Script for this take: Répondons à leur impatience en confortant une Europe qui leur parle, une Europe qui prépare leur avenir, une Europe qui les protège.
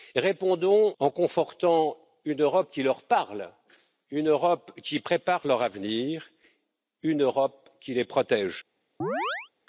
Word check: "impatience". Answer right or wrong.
wrong